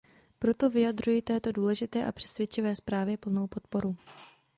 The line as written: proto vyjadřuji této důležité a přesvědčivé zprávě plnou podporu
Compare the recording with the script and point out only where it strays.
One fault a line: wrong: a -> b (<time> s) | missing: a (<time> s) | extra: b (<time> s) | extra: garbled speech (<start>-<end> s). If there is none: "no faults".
no faults